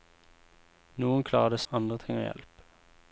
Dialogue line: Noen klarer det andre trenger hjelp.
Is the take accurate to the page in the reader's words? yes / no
yes